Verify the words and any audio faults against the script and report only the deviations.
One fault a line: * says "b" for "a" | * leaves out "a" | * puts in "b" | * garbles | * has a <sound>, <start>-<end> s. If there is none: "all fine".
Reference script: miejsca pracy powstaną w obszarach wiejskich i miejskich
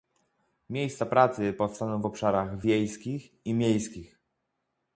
all fine